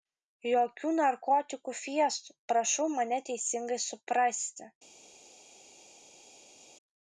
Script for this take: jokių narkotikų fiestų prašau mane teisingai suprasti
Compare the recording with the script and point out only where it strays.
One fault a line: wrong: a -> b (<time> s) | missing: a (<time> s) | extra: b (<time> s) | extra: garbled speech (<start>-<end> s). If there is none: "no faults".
no faults